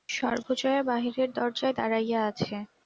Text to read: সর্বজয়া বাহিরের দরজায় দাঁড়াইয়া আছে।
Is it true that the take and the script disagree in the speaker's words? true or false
false